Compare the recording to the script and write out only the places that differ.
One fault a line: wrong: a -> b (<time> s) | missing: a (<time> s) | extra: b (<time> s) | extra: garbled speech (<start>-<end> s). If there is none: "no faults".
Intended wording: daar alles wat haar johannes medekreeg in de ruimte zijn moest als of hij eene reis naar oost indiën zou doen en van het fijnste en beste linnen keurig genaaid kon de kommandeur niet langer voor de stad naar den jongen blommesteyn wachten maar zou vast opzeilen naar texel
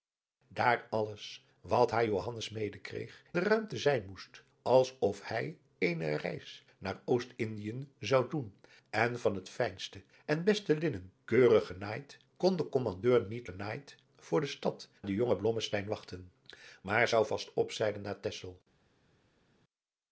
missing: in (3.2 s)
wrong: langer -> genaaid (13.4 s)
missing: naar (14.9 s)